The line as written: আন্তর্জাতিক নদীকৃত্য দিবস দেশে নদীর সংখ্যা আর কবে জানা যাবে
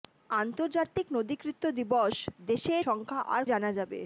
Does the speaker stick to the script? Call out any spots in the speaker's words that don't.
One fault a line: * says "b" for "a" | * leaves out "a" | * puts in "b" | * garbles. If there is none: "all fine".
* leaves out "নদীর"
* leaves out "কবে"